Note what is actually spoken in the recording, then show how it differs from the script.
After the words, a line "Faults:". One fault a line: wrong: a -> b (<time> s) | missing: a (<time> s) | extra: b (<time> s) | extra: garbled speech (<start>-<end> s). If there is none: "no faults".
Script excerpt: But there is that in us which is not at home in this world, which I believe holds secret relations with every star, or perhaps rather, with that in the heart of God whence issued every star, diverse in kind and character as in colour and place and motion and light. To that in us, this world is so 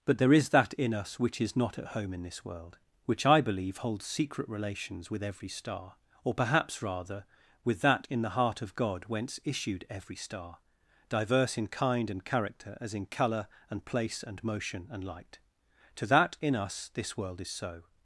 But there is that in us which is not at home in this world, which I believe holds secret relations with every star, or perhaps rather, with that in the heart of God whence issued every star, diverse in kind and character as in colour and place and motion and light. To that in us, this world is so
Faults:
no faults